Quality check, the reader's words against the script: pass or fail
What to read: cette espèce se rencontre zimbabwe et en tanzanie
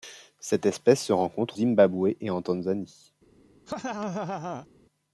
pass